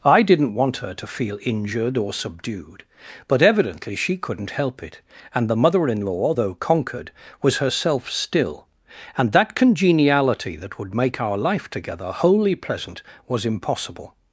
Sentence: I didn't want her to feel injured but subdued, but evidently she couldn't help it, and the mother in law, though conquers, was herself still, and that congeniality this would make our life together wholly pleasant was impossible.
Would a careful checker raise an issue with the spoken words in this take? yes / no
yes